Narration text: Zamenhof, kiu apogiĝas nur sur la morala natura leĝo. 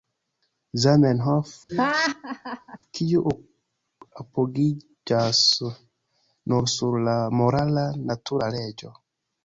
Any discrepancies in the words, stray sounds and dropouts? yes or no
yes